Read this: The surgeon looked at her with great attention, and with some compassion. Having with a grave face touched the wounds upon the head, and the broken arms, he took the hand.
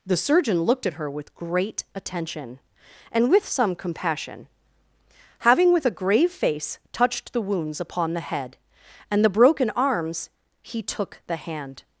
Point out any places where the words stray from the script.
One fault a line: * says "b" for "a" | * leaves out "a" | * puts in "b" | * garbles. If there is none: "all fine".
all fine